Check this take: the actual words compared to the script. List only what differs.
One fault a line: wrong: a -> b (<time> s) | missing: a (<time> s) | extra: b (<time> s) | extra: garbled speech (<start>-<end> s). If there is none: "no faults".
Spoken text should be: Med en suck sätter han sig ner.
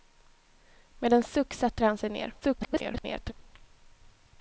extra: garbled speech (2.4-3.3 s)